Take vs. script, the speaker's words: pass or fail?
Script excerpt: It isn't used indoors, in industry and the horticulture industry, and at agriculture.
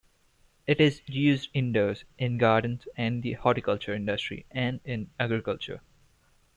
fail